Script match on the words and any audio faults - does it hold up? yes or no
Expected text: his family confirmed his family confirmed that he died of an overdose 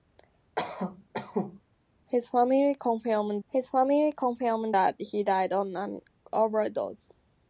no